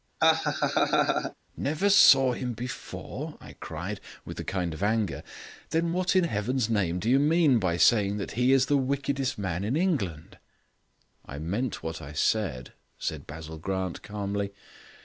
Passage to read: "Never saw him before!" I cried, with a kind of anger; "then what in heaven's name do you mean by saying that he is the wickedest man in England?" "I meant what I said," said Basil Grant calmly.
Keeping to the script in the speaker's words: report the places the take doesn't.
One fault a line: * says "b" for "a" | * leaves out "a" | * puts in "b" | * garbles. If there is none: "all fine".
all fine